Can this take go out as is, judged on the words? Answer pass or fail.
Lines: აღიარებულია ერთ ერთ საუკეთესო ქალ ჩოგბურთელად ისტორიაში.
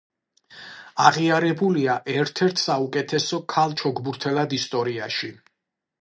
pass